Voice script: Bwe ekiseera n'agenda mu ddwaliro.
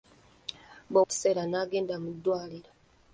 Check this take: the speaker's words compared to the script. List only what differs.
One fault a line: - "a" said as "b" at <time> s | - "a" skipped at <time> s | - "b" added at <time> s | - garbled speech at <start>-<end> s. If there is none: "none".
none